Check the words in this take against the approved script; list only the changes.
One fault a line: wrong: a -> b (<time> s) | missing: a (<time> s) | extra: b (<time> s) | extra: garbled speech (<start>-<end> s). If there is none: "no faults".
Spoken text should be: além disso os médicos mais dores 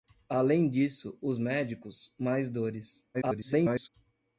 extra: garbled speech (3.1-3.9 s)